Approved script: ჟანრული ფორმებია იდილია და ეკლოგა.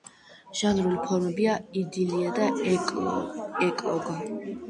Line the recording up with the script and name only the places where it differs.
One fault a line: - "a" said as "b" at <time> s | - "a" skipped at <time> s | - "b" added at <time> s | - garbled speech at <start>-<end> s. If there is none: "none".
none